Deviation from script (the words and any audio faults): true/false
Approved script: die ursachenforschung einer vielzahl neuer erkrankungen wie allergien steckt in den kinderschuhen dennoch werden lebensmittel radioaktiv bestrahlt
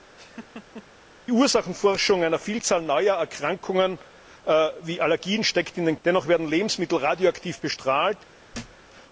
true